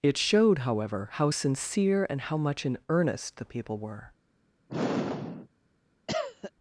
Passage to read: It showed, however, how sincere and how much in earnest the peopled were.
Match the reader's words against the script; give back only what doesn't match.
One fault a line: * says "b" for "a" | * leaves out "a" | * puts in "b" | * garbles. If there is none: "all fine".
* says "people" for "peopled"